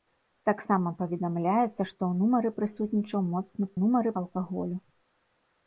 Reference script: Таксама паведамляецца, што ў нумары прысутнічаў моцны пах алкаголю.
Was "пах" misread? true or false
true